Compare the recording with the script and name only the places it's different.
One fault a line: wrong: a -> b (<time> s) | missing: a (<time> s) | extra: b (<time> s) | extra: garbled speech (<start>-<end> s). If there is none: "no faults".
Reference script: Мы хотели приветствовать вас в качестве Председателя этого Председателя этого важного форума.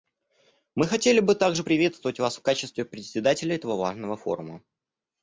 extra: бы также (1.2 s)
missing: Председателя этого (3.7 s)